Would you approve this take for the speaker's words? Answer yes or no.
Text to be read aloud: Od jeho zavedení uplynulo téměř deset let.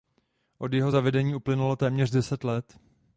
yes